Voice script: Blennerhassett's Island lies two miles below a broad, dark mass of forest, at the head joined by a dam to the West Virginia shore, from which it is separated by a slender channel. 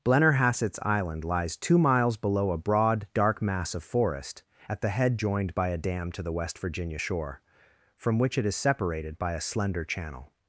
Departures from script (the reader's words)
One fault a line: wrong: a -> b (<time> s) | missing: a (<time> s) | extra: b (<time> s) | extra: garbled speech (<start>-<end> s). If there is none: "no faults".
no faults